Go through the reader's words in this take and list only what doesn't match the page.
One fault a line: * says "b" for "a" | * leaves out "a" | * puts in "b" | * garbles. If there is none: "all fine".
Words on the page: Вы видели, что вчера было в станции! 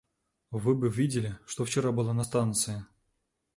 * puts in "бы"
* says "на" for "в"